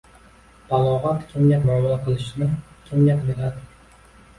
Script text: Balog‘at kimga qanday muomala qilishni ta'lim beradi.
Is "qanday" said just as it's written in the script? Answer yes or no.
no